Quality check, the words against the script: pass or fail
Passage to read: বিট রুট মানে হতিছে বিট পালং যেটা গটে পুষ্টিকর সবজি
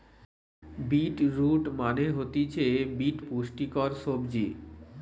fail